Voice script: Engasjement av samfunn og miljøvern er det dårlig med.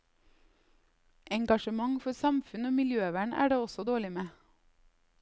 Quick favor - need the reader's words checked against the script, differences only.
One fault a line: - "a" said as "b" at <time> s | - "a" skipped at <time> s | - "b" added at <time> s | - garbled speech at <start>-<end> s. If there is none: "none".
- "av" said as "for" at 2.0 s
- "også" added at 3.7 s